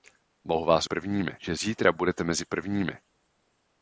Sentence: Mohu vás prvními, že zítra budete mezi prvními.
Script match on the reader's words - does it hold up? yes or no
yes